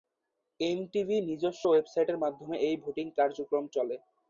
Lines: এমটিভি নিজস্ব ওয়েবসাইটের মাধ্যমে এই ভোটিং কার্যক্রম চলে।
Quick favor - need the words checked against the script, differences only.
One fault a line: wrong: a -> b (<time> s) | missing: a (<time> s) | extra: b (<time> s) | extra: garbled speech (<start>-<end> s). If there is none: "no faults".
no faults